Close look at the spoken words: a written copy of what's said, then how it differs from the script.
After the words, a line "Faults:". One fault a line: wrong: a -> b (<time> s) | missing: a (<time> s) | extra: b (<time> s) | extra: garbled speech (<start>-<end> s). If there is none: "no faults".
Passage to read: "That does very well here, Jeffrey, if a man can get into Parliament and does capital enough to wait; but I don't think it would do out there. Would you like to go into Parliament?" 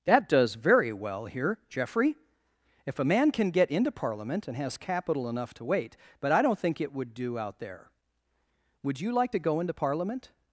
"That does very well here, Jeffrey, if a man can get into Parliament and has capital enough to wait; but I don't think it would do out there. Would you like to go into Parliament?"
Faults:
wrong: does -> has (4.6 s)